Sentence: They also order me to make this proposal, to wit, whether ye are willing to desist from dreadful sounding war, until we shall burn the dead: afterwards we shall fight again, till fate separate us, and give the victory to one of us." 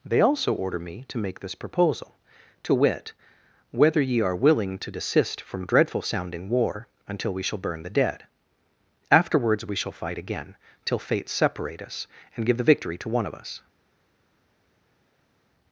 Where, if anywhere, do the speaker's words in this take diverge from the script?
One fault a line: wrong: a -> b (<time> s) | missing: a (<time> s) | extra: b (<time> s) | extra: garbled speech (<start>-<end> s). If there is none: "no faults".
no faults